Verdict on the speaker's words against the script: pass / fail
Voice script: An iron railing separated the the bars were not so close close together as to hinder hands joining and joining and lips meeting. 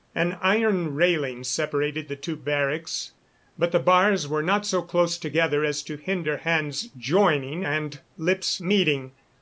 fail